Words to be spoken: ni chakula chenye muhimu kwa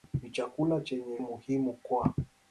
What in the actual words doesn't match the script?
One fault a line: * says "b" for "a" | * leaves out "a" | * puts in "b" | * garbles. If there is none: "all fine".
all fine